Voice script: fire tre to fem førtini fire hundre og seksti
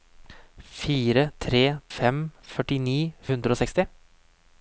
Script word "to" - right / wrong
wrong